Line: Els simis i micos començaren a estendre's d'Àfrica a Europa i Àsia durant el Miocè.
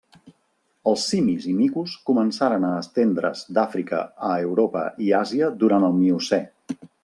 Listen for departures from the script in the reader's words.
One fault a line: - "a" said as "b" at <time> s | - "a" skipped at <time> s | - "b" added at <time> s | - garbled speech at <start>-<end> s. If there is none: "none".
none